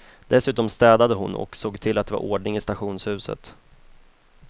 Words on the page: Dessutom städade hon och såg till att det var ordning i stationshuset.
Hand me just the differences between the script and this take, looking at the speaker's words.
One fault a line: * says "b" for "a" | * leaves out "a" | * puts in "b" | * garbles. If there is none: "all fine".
all fine